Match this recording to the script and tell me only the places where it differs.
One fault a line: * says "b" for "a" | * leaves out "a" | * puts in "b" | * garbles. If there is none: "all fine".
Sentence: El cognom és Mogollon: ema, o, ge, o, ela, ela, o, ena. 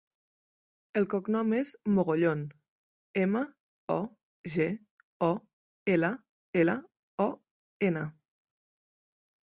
all fine